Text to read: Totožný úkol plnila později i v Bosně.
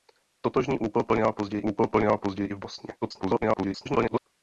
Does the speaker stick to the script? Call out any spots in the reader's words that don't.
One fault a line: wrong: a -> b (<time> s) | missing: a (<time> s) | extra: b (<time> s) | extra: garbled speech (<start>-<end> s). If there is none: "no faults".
extra: úkol plnila později (1.6 s)
extra: garbled speech (3.0-4.2 s)